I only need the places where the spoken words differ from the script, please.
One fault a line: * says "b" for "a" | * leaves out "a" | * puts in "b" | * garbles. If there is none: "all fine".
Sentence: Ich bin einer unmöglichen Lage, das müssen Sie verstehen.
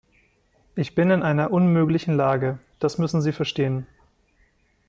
* puts in "in"